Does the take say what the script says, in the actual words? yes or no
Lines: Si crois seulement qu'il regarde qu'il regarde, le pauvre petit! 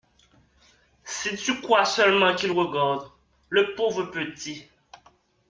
no